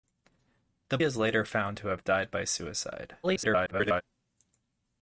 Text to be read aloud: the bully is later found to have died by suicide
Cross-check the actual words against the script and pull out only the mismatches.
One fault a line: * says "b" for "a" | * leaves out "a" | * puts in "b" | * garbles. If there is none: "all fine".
* leaves out "bully"
* garbles